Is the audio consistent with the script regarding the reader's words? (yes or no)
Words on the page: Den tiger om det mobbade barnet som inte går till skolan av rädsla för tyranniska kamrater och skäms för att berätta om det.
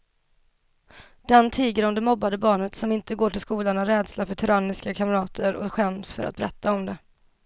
yes